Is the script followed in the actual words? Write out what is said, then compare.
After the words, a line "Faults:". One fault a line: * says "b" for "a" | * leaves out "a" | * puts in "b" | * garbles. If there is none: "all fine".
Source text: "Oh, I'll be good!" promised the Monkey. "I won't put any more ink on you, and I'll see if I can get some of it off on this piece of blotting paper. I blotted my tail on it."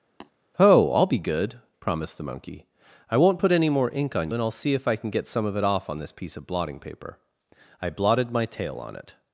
"Oh, I'll be good!" promised the Monkey. "I won't put any more ink on and I'll see if I can get some of it off on this piece of blotting paper. I blotted my tail on it."
Faults:
* leaves out "you"